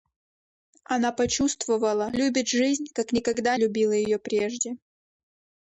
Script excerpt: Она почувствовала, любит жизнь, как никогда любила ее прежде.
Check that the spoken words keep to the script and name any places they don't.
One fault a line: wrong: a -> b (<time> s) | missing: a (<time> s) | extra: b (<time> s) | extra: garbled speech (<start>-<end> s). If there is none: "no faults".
no faults